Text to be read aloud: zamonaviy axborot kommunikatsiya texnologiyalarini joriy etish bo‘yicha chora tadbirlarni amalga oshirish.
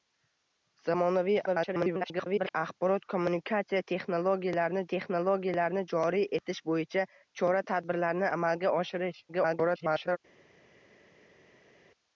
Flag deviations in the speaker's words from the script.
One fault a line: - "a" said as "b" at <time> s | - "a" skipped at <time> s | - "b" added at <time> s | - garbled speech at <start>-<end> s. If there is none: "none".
- garbled speech at 1.5-2.5 s
- "texnologiyalarini" added at 4.9 s
- garbled speech at 9.3-10.2 s